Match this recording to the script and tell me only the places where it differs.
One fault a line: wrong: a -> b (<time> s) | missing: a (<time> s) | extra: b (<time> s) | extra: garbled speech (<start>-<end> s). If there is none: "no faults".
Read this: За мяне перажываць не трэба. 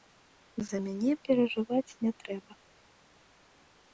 no faults